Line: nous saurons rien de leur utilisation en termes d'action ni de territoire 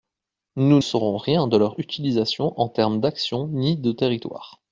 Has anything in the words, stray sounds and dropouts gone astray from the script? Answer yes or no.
no